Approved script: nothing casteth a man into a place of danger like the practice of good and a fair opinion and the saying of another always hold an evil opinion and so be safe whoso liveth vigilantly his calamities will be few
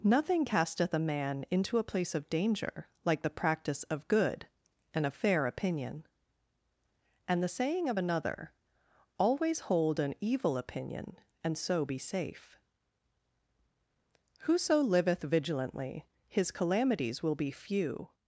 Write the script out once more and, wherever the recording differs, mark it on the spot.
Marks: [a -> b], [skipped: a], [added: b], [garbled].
nothing casteth a man into a place of danger like the practice of good and a fair opinion and the saying of another always hold an evil opinion and so be safe whoso liveth vigilantly his calamities will be few